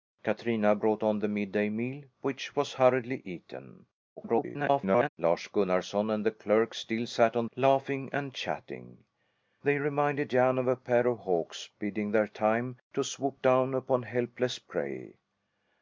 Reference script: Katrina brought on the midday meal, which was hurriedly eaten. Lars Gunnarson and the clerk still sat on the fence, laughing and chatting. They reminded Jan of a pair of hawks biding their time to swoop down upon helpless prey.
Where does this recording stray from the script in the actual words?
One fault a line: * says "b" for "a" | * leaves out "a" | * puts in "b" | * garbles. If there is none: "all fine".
* garbles
* leaves out "the fence"